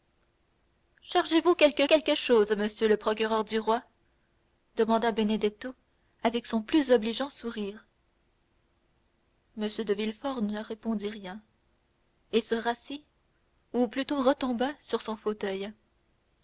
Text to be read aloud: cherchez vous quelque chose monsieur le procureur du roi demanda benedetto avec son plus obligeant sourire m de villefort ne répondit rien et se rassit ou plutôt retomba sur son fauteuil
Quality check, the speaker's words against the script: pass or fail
fail